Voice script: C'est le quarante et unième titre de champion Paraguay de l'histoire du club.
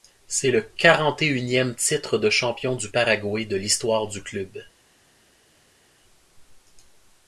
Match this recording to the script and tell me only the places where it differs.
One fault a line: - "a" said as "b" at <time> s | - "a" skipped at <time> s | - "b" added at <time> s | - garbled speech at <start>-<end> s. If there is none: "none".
- "du" added at 2.8 s